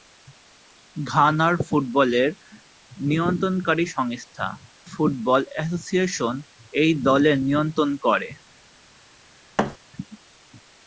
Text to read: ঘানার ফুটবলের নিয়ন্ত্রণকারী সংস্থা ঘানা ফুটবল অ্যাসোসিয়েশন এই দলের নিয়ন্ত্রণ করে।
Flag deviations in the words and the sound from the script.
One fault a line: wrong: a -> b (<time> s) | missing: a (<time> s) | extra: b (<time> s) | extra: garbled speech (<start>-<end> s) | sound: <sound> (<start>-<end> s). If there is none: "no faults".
missing: ঘানা (4.5 s)
sound: thud (9.6-9.8 s)